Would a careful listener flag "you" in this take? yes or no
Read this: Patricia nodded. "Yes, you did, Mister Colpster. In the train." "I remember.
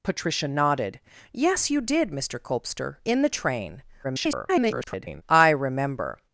no